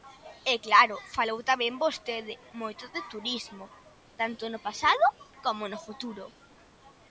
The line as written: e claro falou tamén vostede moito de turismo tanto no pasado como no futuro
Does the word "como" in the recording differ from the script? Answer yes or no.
no